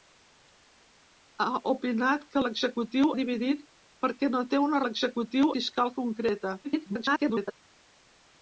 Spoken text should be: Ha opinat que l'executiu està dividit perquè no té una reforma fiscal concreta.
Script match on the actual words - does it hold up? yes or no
no